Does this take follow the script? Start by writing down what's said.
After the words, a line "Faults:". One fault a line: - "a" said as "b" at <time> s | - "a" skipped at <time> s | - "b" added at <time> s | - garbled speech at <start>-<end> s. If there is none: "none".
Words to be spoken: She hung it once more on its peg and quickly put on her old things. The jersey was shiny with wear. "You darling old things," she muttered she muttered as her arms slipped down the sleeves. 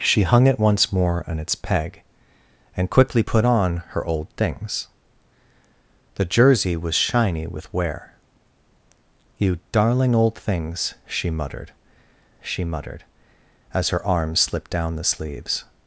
She hung it once more on its peg and quickly put on her old things. The jersey was shiny with wear. "You darling old things," she muttered she muttered as her arms slipped down the sleeves.
Faults:
none